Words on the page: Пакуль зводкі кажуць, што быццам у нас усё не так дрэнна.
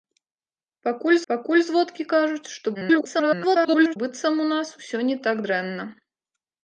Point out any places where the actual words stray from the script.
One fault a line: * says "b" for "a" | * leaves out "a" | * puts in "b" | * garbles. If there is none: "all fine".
* puts in "пакуль"
* garbles